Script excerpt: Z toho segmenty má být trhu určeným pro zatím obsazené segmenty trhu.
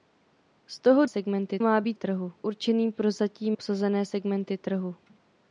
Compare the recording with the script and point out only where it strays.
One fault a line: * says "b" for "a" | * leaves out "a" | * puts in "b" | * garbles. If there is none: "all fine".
all fine